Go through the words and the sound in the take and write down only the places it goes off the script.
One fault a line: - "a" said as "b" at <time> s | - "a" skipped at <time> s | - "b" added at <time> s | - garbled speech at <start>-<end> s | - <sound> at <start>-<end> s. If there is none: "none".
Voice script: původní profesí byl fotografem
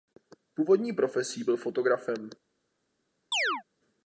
- chirp at 3.3-3.6 s